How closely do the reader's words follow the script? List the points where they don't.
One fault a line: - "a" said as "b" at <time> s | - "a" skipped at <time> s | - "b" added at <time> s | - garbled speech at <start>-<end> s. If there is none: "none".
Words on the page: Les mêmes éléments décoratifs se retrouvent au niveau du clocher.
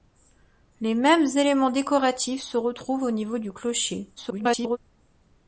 - garbled speech at 4.2-4.8 s